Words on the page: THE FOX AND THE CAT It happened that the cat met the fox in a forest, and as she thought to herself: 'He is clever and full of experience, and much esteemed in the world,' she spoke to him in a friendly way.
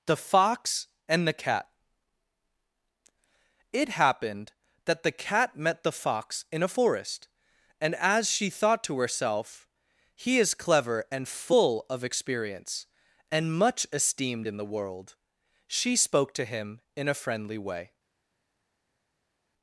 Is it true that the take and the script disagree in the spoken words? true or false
false